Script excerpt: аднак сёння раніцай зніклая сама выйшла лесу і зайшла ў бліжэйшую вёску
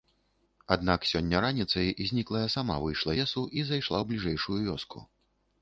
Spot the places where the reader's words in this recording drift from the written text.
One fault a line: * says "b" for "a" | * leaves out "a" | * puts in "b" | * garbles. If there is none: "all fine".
all fine